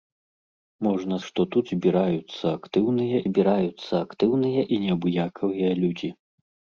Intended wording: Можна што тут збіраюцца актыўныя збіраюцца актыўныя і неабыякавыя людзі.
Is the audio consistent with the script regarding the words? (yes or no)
yes